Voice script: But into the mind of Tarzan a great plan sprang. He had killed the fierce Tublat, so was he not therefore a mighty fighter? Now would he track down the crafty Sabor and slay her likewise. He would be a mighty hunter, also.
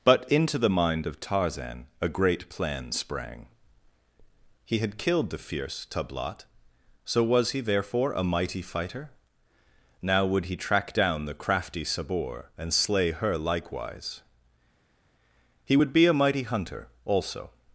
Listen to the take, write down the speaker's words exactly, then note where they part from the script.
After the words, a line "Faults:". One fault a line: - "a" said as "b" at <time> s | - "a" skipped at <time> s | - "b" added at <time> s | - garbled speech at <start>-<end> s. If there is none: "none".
But into the mind of Tarzan a great plan sprang. He had killed the fierce Tublat, so was he therefore a mighty fighter? Now would he track down the crafty Sabor and slay her likewise. He would be a mighty hunter, also.
Faults:
- "not" skipped at 7.6 s